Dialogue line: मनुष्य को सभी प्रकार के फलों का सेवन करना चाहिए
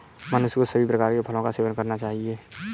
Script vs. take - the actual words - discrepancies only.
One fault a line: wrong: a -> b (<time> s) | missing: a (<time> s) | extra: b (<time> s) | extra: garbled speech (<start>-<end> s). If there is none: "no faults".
no faults